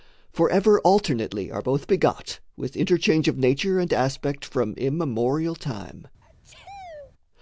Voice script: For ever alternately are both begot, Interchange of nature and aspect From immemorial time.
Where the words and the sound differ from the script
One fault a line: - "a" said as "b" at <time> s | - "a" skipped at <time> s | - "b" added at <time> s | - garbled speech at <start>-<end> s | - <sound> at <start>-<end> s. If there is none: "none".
- "With" added at 2.6 s
- sneeze at 6.2-7.1 s